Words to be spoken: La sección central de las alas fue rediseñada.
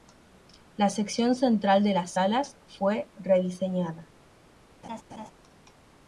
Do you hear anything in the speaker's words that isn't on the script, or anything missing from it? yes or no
no